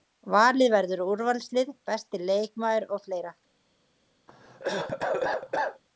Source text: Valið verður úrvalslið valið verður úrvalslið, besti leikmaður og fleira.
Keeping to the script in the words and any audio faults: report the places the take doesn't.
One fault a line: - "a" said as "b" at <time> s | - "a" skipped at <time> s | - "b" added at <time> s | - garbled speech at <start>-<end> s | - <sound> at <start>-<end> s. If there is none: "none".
- "valið verður úrvalslið" skipped at 1.7 s
- cough at 4.3-5.8 s